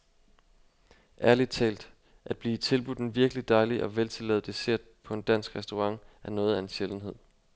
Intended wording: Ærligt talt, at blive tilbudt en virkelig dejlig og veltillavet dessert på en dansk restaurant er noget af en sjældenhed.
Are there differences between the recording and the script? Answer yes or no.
no